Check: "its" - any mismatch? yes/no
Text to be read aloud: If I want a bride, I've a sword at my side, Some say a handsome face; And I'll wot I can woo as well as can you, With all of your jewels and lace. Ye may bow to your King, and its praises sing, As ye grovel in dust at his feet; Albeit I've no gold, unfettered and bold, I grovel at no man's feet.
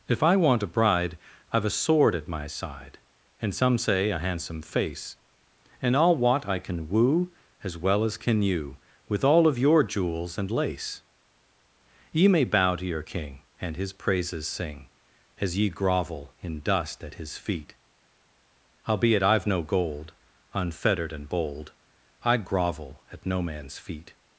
yes